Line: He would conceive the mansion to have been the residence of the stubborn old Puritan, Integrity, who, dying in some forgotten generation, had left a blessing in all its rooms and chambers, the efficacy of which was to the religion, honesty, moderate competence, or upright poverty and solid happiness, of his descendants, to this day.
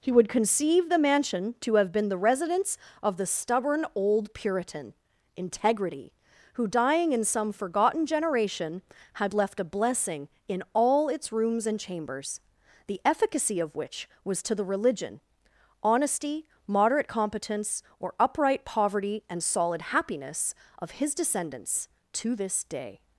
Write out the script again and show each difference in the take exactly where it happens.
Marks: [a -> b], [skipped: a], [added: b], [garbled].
He would conceive the mansion to have been the residence of the stubborn old Puritan, Integrity, who, dying in some forgotten generation, had left a blessing in all its rooms and chambers, the efficacy of which was to the religion, honesty, moderate competence, or upright poverty and solid happiness, of his descendants, to this day.